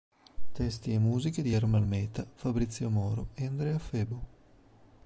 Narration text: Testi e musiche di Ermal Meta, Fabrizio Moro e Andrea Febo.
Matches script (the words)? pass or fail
pass